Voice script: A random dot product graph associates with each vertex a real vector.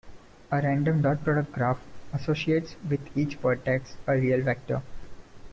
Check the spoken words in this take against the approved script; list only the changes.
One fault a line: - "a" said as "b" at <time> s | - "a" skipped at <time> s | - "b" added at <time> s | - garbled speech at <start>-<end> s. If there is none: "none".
none